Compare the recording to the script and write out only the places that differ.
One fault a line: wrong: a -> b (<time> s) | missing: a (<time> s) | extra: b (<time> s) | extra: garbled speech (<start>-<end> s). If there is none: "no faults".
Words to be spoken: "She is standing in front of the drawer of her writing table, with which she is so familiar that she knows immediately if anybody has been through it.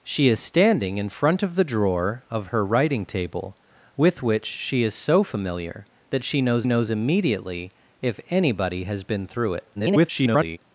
extra: knows (6.6 s)
extra: garbled speech (9.7-10.6 s)